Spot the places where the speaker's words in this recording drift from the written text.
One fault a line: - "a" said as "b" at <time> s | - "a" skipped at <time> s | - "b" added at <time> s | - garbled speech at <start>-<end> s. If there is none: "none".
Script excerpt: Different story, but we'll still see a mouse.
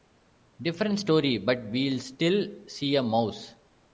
none